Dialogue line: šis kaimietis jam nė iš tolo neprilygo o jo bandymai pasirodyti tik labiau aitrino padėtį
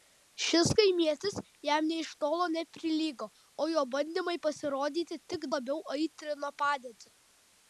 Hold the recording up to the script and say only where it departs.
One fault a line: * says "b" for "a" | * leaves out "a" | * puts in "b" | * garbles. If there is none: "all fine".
all fine